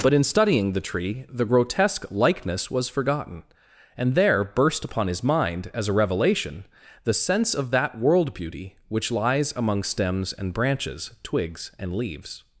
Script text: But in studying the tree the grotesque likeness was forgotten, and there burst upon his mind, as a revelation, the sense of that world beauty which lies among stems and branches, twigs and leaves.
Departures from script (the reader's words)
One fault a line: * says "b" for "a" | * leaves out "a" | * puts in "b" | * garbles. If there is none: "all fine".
all fine